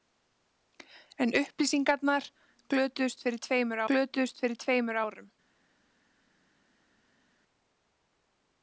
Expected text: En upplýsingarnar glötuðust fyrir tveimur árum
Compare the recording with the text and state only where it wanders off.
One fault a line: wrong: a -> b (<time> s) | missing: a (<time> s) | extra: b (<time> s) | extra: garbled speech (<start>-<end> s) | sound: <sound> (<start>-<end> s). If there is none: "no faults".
extra: glötuðust fyrir tveimur (3.9 s)